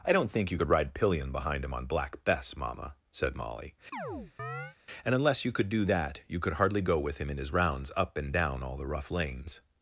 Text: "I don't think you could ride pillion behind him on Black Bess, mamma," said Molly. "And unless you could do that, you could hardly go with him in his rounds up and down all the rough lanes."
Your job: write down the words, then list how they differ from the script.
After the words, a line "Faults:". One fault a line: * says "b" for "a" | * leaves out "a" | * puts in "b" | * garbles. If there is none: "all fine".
"I don't think you could ride pillion behind him on Black Bess, mamma," said Molly. "And unless you could do that, you could hardly go with him in his rounds up and down all the rough lanes."
Faults:
all fine